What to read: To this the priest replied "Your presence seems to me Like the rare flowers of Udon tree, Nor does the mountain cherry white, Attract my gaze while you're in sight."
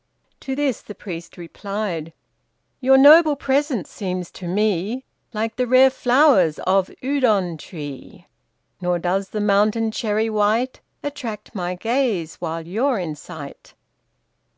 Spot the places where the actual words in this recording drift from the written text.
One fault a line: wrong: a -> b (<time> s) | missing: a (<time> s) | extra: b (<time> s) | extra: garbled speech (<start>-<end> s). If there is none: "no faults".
extra: noble (3.0 s)